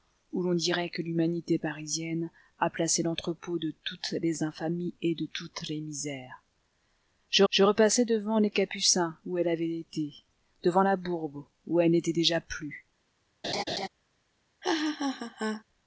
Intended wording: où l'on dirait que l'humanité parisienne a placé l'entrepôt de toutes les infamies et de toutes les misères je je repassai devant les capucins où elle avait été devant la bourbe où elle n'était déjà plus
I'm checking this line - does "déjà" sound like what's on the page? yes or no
yes